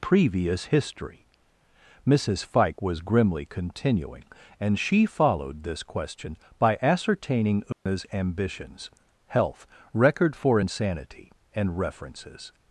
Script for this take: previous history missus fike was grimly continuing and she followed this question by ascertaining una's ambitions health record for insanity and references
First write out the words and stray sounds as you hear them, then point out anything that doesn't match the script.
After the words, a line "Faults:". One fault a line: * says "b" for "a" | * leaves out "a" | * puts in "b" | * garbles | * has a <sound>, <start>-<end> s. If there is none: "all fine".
previous history missus fike was grimly continuing and she followed this question by ascertaining una's ambitions health record for insanity and references
Faults:
* has a dropout, 7.7-7.9 s